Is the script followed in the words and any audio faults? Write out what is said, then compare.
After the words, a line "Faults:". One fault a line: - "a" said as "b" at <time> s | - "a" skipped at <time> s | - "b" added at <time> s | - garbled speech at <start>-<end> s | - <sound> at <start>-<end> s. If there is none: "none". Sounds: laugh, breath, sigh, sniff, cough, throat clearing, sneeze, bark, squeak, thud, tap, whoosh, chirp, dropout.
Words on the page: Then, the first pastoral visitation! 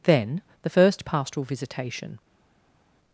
Then, the first pastoral visitation!
Faults:
none